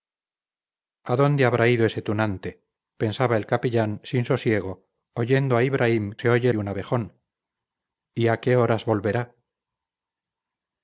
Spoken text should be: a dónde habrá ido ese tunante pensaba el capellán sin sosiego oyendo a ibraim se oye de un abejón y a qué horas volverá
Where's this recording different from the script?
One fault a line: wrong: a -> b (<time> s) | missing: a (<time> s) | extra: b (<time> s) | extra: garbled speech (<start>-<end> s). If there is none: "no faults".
no faults